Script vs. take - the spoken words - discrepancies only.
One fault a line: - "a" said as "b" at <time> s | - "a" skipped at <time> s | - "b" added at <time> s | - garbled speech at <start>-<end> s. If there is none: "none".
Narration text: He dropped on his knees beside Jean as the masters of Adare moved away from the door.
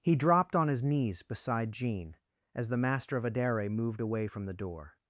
- "masters" said as "master" at 2.8 s